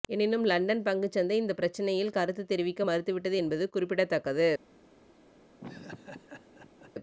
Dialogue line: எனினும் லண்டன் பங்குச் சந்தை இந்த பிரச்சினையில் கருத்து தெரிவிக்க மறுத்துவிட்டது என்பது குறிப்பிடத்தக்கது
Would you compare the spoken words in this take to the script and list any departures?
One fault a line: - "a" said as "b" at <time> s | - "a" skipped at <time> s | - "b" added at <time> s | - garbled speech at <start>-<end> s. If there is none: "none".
none